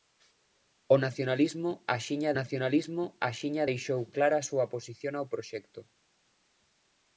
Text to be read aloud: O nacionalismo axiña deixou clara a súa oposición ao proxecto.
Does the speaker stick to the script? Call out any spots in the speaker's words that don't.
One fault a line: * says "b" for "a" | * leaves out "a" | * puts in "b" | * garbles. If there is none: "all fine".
* puts in "nacionalismo axiña"